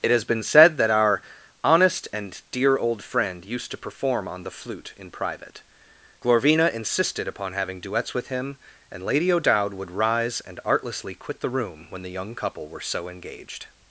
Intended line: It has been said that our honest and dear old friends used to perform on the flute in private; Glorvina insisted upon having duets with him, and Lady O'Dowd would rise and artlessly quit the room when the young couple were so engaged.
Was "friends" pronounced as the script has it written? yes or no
no